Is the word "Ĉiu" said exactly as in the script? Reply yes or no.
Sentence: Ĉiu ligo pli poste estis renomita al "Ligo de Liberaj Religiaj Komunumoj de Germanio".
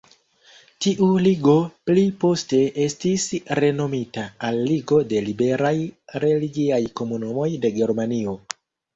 no